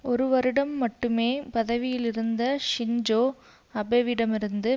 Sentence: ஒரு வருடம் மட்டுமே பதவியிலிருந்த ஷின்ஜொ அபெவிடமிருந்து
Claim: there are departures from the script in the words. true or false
false